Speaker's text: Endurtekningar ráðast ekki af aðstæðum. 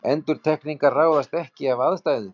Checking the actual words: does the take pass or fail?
pass